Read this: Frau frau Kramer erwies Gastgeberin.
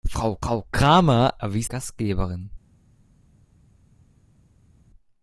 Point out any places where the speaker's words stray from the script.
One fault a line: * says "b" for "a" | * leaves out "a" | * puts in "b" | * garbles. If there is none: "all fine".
all fine